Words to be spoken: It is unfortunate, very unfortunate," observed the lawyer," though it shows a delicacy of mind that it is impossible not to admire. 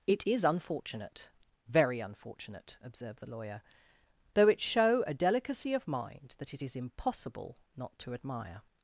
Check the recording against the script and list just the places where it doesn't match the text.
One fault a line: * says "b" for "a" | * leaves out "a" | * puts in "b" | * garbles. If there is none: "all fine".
* says "show" for "shows"